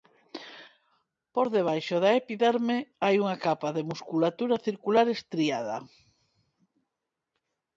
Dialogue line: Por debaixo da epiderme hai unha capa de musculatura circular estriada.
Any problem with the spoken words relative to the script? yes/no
no